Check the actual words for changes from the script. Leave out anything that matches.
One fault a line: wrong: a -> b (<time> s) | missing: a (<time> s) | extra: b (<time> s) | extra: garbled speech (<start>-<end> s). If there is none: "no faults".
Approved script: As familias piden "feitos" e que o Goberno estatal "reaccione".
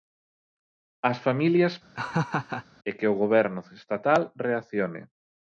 missing: piden feitos (1.7 s)